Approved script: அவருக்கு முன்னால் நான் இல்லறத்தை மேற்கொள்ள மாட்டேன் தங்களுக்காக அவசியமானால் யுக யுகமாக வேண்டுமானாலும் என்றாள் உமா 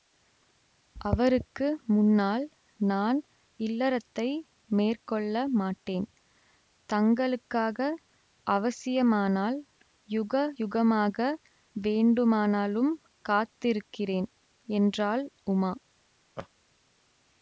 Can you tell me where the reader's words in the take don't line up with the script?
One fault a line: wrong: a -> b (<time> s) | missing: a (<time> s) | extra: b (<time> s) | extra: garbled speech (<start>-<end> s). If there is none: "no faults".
extra: காத்திருக்கிறேன் (13.3 s)